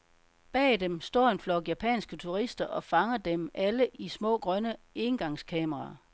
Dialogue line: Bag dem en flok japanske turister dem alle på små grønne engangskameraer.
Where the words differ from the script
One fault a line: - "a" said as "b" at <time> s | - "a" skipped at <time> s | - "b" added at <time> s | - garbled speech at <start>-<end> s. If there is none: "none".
- "står" added at 1.0 s
- "og fanger" added at 2.6 s
- "på" said as "i" at 3.9 s